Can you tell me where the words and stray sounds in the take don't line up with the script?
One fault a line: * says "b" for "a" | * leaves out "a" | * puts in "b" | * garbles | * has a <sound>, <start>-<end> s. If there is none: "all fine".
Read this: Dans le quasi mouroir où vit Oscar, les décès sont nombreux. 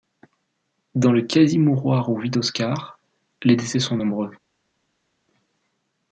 all fine